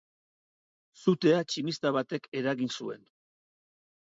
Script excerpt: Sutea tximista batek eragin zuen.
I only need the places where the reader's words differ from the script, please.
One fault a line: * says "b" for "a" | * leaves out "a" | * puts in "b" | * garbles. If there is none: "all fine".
all fine